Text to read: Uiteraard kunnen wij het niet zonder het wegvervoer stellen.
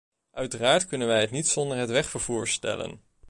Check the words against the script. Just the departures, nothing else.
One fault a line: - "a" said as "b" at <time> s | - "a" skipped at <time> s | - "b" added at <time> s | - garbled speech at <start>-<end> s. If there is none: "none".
none